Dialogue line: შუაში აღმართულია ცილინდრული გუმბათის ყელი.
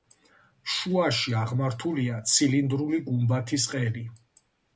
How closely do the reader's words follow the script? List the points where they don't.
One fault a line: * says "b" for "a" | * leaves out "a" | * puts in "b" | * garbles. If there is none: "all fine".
all fine